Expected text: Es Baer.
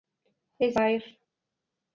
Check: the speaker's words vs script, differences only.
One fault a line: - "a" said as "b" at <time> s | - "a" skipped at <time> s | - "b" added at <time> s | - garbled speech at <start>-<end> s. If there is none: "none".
none